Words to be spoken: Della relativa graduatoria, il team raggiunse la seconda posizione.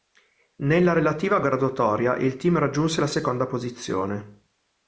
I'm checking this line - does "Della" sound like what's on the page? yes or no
no